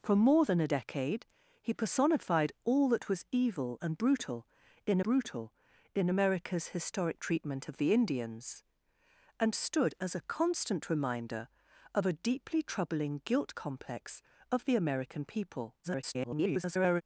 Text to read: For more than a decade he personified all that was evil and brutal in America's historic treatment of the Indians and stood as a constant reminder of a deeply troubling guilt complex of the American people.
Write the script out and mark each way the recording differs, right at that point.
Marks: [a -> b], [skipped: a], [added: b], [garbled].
For more than a decade he personified all that was evil and brutal in [added: brutal in] America's historic treatment of the Indians and stood as a constant reminder of a deeply troubling guilt complex of the American people. [garbled]